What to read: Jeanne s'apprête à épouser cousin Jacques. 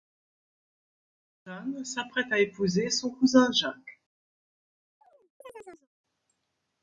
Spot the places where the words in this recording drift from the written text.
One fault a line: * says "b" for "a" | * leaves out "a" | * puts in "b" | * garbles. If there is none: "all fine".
* puts in "son"